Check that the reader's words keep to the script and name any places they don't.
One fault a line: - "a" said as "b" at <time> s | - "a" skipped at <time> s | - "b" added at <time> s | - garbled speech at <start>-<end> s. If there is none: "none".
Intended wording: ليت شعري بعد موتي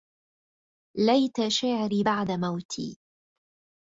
none